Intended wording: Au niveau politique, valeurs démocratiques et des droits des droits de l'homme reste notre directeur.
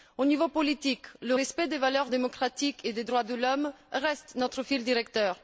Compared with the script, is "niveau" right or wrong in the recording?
right